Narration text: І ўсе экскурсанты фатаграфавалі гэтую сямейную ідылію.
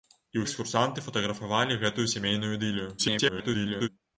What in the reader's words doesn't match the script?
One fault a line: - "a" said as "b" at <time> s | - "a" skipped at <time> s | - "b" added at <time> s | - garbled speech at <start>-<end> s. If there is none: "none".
- "ўсе" skipped at 0.5 s
- garbled speech at 3.0-3.9 s